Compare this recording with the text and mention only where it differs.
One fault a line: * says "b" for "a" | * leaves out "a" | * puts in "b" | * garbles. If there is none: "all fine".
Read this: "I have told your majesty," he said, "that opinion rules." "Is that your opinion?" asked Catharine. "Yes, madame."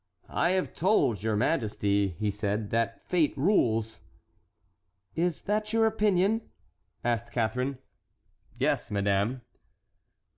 * says "fate" for "opinion"